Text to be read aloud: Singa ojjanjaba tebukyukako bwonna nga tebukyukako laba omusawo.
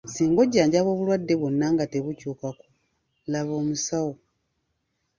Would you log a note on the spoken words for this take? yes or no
yes